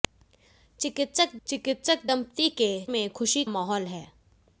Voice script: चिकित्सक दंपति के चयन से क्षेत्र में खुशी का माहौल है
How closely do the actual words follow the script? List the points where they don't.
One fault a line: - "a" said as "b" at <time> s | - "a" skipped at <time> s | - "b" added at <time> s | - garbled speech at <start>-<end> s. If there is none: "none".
- "चिकित्सक" added at 1.5 s
- "चयन से क्षेत्र" skipped at 2.7 s
- "का" skipped at 3.4 s